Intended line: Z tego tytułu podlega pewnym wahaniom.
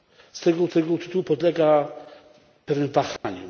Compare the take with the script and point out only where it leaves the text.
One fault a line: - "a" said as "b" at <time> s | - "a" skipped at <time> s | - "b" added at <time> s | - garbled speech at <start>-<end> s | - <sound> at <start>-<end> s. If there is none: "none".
- "tego" added at 0.7 s
- dropout at 3.2-3.2 s